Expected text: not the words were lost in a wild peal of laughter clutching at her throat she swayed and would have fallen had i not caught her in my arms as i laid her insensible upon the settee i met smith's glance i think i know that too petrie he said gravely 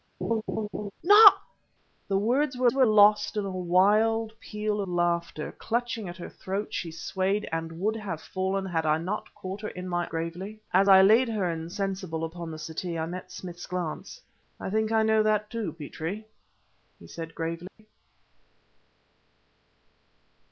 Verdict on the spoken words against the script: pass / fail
fail